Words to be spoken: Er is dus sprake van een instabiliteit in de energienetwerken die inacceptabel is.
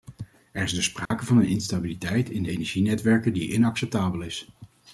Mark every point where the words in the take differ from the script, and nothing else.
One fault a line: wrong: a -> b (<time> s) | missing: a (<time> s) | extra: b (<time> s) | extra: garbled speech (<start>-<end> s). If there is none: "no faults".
no faults